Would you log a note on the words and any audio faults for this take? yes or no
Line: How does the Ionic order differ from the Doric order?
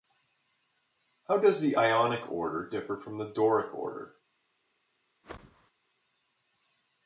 yes